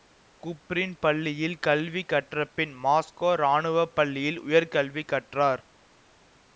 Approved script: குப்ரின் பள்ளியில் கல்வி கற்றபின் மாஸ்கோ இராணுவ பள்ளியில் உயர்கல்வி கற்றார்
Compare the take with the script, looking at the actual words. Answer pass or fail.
pass